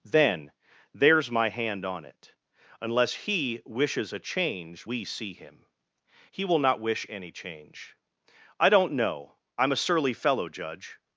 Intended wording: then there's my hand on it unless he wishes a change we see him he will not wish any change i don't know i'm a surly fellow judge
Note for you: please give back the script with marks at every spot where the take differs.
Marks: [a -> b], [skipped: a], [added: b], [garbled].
then there's my hand on it unless he wishes a change we see him he will not wish any change i don't know i'm a surly fellow judge